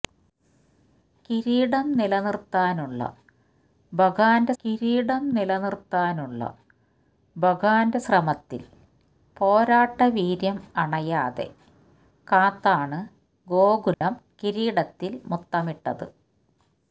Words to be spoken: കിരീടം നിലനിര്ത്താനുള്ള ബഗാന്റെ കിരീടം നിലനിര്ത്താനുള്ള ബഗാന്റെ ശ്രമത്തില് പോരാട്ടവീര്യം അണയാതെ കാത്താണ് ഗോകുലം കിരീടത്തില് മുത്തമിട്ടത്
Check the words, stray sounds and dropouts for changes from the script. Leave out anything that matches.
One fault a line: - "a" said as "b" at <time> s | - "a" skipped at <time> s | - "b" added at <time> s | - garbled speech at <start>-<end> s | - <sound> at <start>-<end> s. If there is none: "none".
- dropout at 13.9-14.0 s